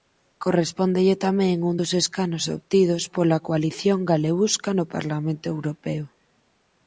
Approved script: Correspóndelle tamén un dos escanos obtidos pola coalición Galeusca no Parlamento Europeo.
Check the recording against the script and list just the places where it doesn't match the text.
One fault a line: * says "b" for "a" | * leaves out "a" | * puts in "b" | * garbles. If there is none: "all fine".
all fine